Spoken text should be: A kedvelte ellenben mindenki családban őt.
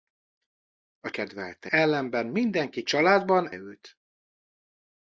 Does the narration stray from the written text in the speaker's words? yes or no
no